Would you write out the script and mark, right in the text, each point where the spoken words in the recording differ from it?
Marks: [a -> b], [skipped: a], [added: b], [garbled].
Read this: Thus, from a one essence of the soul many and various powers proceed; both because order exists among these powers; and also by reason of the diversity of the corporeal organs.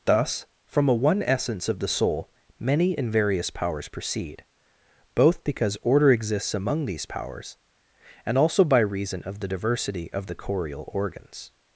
Thus, from a one essence of the soul many and various powers proceed; both because order exists among these powers; and also by reason of the diversity of the corporeal organs.